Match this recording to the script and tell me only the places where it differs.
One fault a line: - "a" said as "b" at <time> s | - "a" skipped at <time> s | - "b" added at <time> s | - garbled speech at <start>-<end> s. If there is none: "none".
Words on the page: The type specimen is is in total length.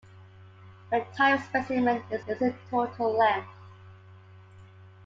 none